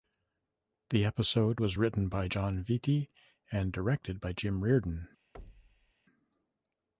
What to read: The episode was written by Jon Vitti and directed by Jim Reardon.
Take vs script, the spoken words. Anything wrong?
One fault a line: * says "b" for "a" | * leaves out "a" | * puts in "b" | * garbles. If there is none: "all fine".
all fine